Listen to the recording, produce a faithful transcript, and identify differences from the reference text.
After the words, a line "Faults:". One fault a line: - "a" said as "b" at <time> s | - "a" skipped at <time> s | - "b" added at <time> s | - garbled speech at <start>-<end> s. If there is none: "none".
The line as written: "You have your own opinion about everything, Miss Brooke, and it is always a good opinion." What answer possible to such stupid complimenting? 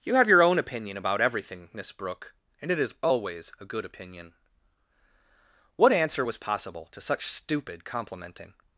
"You have your own opinion about everything, Miss Brooke, and it is always a good opinion." What answer was possible to such stupid complimenting?
Faults:
- "was" added at 6.2 s